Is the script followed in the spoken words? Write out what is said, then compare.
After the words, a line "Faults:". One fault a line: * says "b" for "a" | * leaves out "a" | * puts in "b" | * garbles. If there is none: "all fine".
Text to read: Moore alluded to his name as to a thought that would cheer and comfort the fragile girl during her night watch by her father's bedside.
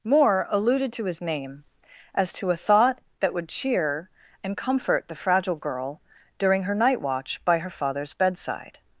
Moore alluded to his name as to a thought that would cheer and comfort the fragile girl during her night watch by her father's bedside.
Faults:
all fine